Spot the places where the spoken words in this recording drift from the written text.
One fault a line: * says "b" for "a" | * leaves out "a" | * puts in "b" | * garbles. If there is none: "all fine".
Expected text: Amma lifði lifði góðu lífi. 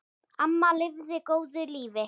* leaves out "lifði"